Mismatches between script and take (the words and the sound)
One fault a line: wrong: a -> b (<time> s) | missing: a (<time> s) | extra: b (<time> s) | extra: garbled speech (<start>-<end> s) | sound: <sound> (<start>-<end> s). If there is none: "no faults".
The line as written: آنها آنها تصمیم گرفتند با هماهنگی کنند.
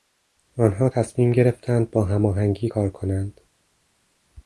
missing: آنها (0.9 s)
extra: کار (2.6 s)